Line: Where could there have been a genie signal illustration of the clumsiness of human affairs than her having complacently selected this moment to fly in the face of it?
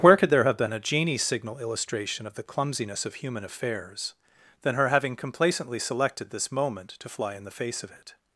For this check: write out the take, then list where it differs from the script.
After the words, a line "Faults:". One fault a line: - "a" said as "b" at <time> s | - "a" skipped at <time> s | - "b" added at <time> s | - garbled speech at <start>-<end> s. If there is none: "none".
Where could there have been a genie signal illustration of the clumsiness of human affairs than her having complacently selected this moment to fly in the face of it?
Faults:
none